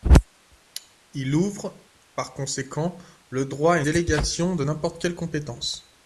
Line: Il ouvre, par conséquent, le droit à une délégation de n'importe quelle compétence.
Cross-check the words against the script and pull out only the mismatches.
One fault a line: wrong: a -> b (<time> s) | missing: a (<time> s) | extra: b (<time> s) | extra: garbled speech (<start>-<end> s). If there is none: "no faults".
missing: une (3.8 s)